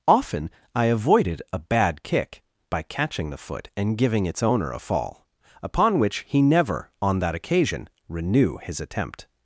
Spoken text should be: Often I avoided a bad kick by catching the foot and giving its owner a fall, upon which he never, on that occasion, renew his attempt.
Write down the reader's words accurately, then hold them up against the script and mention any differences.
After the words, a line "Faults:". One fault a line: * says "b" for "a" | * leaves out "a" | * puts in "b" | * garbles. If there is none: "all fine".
Often I avoided a bad kick by catching the foot and giving its owner a fall, upon which he never, on that occasion, renew his attempt.
Faults:
all fine